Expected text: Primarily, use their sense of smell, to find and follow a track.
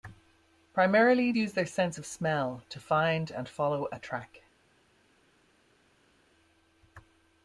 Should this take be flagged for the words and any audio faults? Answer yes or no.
no